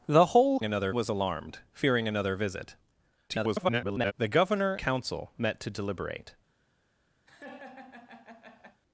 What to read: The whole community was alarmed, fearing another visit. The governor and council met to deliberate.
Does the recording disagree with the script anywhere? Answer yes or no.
yes